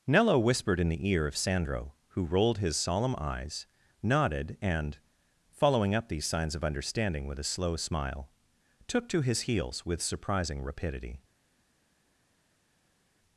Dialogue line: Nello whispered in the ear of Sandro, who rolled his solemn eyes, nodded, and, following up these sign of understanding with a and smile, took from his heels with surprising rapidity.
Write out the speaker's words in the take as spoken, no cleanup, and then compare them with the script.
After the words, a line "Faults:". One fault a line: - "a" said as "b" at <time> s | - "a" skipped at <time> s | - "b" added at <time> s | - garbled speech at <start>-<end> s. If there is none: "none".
Nello whispered in the ear of Sandro, who rolled his solemn eyes, nodded, and, following up these signs of understanding with a slow smile, took to his heels with surprising rapidity.
Faults:
- "sign" said as "signs" at 6.2 s
- "and" said as "slow" at 7.4 s
- "from" said as "to" at 9.1 s